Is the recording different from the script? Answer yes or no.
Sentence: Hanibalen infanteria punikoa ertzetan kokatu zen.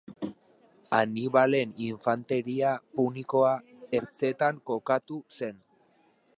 no